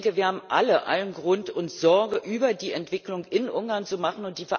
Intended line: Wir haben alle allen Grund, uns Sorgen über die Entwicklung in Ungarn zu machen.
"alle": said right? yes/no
yes